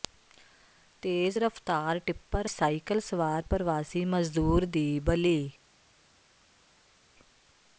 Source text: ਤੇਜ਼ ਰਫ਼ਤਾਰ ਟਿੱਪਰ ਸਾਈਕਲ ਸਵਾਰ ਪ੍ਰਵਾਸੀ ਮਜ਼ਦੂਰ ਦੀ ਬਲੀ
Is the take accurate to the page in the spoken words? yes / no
yes